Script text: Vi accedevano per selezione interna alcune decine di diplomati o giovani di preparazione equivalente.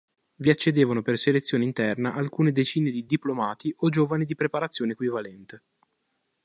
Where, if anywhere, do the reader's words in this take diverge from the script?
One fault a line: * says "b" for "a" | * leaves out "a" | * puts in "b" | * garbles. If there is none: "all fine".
all fine